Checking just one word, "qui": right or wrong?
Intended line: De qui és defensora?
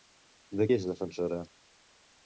wrong